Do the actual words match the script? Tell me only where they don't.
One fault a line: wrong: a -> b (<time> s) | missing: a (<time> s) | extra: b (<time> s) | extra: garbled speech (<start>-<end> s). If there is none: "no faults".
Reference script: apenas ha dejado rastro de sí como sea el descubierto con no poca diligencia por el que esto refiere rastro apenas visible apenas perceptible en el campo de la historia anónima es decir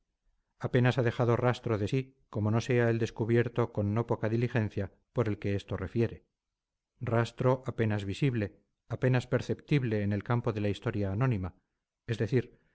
extra: no (2.5 s)